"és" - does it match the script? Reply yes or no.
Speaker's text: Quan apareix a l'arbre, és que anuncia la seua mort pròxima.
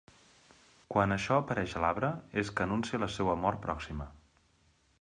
yes